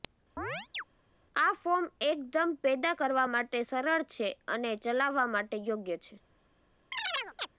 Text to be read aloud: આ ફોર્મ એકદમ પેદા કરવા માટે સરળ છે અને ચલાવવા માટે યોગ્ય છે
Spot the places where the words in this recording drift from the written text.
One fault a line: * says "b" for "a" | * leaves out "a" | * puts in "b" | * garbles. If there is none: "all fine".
all fine